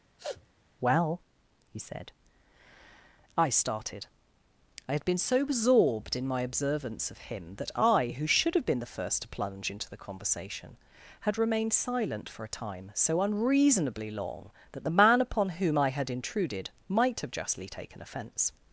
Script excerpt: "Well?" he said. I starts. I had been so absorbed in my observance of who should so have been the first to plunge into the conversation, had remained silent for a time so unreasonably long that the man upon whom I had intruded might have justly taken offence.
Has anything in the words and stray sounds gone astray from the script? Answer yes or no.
yes